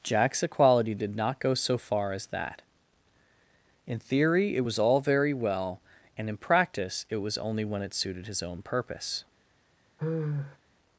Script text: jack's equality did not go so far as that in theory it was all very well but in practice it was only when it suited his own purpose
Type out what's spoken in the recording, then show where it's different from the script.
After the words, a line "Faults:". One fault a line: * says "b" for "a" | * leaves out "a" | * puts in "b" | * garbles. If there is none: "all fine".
jack's equality did not go so far as that in theory it was all very well and in practice it was only when it suited his own purpose
Faults:
* says "and" for "but"